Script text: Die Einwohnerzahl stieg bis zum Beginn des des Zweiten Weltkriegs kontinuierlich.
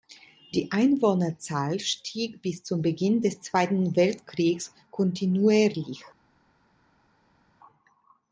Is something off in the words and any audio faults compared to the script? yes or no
yes